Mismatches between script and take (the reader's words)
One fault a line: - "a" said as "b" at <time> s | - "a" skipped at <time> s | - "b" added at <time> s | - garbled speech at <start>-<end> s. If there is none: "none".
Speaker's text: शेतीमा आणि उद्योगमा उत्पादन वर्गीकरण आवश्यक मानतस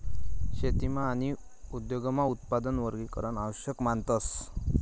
none